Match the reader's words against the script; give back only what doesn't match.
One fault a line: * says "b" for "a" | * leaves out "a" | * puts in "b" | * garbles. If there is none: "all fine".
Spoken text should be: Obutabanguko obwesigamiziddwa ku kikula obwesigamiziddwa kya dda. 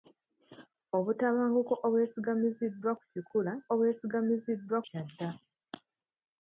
all fine